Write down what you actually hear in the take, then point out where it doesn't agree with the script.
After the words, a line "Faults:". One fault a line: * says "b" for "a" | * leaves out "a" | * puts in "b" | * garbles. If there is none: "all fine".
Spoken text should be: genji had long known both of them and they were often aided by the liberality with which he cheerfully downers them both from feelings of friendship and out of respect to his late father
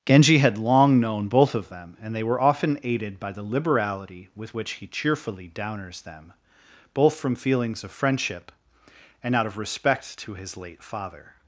genji had long known both of them and they were often aided by the liberality with which he cheerfully downers them both from feelings of friendship and out of respect to his late father
Faults:
all fine